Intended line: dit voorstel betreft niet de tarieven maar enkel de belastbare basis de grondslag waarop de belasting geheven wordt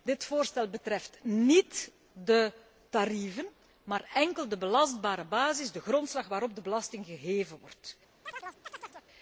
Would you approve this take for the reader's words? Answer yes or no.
yes